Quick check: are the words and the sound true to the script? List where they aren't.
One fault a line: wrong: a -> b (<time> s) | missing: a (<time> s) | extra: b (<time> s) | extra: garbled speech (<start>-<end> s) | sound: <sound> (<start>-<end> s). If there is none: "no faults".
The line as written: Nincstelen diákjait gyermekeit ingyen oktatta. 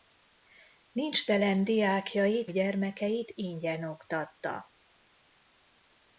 no faults